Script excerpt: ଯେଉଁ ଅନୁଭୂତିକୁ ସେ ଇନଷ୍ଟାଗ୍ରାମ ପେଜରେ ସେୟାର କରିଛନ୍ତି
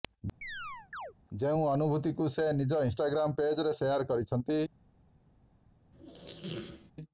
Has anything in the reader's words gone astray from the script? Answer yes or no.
yes